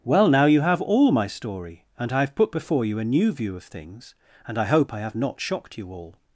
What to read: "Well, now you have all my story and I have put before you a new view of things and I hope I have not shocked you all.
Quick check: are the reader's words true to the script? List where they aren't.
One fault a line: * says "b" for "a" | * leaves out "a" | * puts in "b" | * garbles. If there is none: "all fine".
all fine